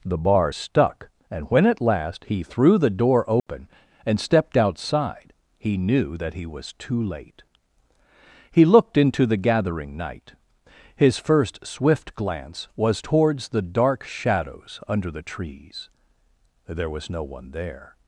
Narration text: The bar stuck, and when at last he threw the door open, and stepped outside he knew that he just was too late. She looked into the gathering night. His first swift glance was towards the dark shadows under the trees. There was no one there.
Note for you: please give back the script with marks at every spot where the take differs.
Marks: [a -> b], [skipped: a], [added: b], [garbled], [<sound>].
The bar stuck, and when at last he threw the door open, [dropout] and stepped outside he knew that he [skipped: just] was too late. [She -> He] looked into the gathering night. His first swift glance was towards the dark shadows under the trees. There was no one there.